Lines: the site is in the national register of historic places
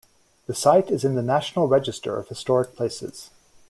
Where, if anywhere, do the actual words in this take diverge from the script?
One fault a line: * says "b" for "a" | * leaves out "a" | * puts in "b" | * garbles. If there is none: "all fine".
all fine